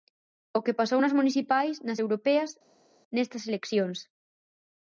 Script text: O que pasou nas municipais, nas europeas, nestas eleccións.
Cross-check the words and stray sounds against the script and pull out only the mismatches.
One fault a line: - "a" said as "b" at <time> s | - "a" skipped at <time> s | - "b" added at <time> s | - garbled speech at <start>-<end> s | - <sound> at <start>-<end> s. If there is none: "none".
none